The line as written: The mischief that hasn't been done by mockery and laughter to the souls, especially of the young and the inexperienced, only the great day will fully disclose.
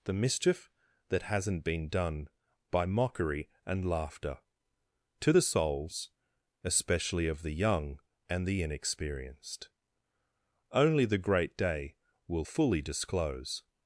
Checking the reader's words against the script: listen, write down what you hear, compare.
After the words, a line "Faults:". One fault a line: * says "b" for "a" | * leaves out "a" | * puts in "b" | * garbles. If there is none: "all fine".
The mischief that hasn't been done by mockery and laughter to the souls, especially of the young and the inexperienced, only the great day will fully disclose.
Faults:
all fine